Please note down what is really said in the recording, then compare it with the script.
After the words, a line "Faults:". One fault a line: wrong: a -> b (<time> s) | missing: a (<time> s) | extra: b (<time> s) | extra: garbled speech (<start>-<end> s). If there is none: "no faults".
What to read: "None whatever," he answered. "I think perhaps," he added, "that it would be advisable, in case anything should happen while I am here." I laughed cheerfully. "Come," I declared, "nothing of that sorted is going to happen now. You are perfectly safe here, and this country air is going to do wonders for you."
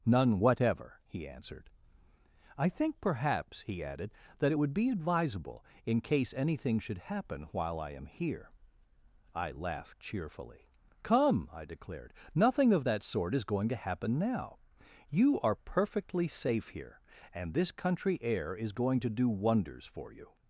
"None whatever," he answered. "I think perhaps," he added, "that it would be advisable, in case anything should happen while I am here." I laughed cheerfully. "Come," I declared, "nothing of that sort is going to happen now. You are perfectly safe here, and this country air is going to do wonders for you."
Faults:
wrong: sorted -> sort (13.0 s)